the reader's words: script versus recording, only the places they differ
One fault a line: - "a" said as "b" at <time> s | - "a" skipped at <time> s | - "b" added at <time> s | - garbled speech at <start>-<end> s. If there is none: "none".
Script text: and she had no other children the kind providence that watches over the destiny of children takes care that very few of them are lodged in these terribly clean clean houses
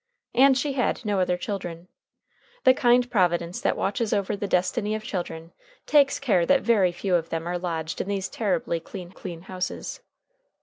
none